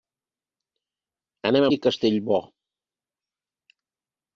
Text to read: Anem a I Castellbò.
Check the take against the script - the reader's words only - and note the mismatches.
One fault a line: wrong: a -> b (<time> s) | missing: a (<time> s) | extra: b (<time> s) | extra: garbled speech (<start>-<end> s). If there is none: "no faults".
no faults